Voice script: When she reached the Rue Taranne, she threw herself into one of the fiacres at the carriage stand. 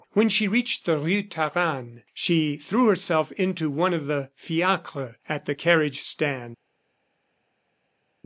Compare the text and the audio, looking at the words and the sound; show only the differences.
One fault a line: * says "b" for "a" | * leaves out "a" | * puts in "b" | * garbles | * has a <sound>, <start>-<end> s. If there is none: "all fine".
all fine